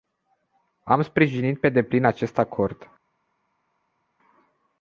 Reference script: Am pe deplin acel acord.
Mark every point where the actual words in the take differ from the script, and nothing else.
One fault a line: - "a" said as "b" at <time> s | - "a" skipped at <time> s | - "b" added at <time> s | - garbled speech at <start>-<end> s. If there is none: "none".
- "sprijinit" added at 1.0 s
- "acel" said as "acest" at 2.0 s